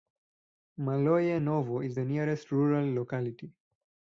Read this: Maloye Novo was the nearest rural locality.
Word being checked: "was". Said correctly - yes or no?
no